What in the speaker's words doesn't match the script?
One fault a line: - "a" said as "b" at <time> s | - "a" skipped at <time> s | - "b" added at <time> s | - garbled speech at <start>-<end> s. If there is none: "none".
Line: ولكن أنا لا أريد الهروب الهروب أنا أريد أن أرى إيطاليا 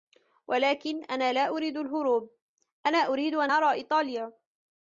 - "الهروب" skipped at 2.4 s